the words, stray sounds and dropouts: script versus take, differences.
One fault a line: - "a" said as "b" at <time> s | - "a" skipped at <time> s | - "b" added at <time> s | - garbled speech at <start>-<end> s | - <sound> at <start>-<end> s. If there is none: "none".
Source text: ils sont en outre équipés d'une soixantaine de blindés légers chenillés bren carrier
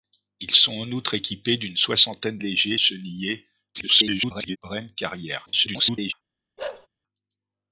- "de blindés" skipped at 2.4 s
- garbled speech at 3.7-4.6 s
- garbled speech at 5.5-6.1 s
- bark at 6.6-6.9 s